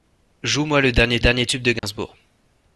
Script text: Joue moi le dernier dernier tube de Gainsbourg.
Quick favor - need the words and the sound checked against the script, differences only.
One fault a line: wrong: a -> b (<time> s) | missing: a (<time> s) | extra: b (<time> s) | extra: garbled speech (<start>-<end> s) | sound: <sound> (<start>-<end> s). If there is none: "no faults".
sound: dropout (1.8-1.8 s)